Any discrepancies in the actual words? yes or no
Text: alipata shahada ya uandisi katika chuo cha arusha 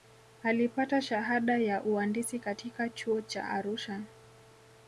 no